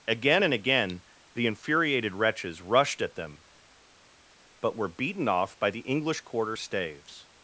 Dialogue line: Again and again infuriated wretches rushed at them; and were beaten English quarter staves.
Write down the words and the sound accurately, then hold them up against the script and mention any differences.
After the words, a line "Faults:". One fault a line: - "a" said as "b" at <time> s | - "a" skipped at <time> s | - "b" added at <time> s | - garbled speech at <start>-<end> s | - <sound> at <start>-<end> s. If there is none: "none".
Again and again the infuriated wretches rushed at them; but were beaten off by the English quarter staves.
Faults:
- "the" added at 1.3 s
- "and" said as "but" at 4.6 s
- "off by the" added at 5.3 s